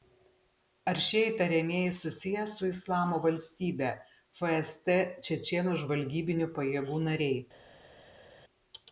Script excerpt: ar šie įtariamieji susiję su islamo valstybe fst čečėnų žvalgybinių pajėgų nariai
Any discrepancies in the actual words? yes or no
no